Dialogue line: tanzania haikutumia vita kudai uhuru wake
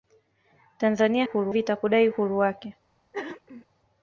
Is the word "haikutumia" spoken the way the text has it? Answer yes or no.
no